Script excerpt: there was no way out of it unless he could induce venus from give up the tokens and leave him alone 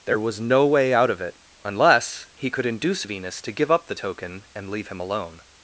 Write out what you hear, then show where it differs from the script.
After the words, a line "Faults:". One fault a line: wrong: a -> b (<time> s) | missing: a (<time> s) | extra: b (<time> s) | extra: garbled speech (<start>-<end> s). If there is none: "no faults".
there was no way out of it unless he could induce venus to give up the token and leave him alone
Faults:
wrong: from -> to (3.4 s)
wrong: tokens -> token (3.9 s)